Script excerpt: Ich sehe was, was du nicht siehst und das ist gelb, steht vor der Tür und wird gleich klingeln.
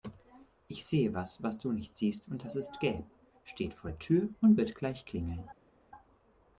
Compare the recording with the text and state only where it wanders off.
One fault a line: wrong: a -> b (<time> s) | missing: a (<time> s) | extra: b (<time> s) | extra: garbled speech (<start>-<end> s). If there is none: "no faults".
no faults